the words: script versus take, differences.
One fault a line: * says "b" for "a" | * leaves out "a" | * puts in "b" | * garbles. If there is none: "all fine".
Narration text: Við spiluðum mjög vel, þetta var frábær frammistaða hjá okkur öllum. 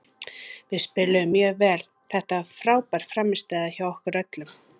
all fine